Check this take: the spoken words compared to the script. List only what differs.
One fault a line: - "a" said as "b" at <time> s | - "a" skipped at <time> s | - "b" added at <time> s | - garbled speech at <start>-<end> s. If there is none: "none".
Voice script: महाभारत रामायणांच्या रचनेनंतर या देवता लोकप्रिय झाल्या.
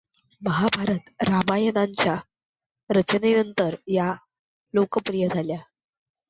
- "देवता" skipped at 4.1 s